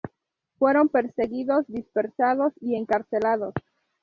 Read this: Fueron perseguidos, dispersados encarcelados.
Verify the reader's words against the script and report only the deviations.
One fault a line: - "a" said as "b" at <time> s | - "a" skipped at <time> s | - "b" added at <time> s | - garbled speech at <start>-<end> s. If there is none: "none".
- "y" added at 2.6 s